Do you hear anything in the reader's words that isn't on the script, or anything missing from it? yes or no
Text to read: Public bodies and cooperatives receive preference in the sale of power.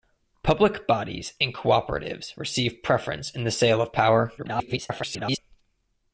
yes